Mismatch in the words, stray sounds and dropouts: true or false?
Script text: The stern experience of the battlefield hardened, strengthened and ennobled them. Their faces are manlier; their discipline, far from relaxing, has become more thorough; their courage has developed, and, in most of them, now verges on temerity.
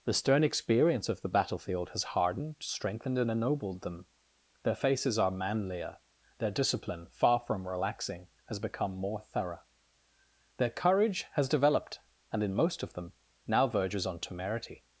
true